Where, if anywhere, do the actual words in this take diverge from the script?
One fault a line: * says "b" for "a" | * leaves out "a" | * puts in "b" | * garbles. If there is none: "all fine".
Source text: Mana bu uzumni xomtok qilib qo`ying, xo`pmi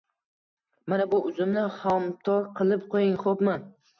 all fine